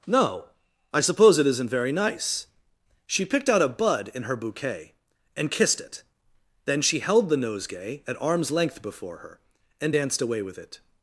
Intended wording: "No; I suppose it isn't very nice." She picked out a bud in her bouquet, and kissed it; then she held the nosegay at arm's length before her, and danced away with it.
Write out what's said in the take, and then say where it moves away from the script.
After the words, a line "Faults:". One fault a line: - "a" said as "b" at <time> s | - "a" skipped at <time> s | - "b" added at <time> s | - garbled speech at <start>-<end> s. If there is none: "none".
"No; I suppose it isn't very nice." She picked out a bud in her bouquet, and kissed it; then she held the nosegay at arm's length before her, and danced away with it.
Faults:
none